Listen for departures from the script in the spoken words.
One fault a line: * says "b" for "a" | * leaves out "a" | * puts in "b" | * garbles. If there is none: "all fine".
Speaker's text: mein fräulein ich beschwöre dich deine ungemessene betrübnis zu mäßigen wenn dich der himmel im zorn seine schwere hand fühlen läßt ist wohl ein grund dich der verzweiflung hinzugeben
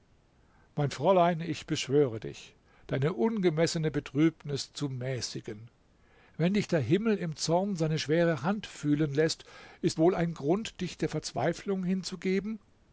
all fine